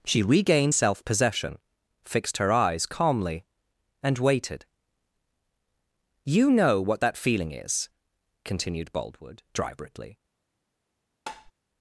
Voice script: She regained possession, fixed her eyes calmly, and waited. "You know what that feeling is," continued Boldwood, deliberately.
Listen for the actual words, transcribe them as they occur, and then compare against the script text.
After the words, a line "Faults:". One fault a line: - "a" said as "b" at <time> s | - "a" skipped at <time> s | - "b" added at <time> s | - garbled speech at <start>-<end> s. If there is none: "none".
She regained self possession, fixed her eyes calmly, and waited. "You know what that feeling is," continued Boldwood, deliberately.
Faults:
- "self" added at 0.7 s